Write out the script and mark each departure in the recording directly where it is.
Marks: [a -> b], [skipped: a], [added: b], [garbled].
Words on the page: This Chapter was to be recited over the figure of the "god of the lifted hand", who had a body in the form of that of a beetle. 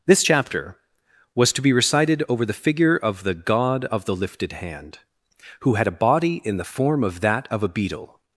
This Chapter was to be recited over the figure of the "god of the lifted hand", who had a body in the form of that of a beetle.